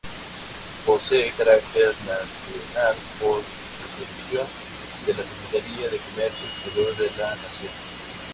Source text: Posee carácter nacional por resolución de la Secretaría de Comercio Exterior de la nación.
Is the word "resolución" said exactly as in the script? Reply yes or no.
yes